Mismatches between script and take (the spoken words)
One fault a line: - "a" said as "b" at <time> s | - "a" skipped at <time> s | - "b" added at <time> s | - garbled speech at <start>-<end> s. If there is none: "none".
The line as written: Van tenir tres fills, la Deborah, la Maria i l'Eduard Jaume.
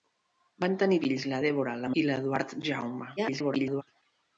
- "tres" skipped at 0.9 s
- "Maria" skipped at 1.9 s
- garbled speech at 3.2-3.8 s